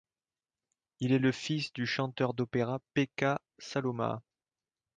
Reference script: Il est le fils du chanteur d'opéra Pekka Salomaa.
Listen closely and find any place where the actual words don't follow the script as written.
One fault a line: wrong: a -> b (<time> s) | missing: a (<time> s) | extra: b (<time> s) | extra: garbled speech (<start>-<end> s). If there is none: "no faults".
no faults